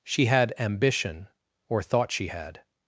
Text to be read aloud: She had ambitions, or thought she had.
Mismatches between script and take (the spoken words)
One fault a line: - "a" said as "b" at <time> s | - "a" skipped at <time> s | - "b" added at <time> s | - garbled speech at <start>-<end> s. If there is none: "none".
- "ambitions" said as "ambition" at 0.6 s